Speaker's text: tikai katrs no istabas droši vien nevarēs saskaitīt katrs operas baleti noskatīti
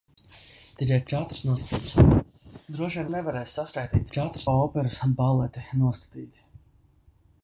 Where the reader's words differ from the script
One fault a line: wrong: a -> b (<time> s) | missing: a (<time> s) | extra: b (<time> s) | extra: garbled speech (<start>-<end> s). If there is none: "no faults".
no faults